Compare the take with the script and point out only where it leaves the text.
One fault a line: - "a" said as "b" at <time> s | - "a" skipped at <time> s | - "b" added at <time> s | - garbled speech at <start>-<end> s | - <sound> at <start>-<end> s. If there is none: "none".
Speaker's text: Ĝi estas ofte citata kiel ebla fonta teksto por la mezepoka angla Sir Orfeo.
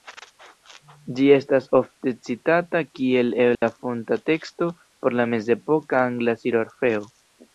- dropout at 3.5-3.6 s